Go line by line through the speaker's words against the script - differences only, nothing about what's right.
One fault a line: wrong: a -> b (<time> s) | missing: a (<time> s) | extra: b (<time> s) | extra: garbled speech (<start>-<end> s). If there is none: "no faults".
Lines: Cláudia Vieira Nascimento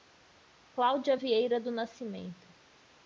extra: do (1.6 s)